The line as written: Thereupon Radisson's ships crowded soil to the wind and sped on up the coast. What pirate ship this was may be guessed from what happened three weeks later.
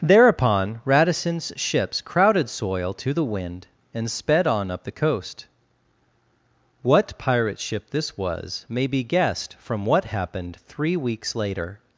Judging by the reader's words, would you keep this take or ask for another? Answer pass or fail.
pass